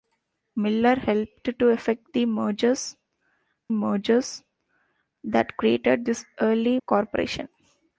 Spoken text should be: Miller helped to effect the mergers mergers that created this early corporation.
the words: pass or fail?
pass